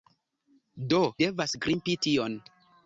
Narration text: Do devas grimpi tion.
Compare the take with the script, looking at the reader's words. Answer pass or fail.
pass